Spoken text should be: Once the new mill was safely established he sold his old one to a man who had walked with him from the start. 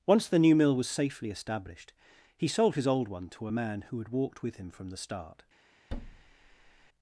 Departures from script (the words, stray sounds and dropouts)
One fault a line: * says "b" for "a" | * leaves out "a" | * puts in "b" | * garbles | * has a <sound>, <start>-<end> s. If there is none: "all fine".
* has a thud, 5.9-6.9 s